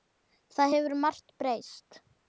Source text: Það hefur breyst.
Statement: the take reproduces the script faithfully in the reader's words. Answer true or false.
false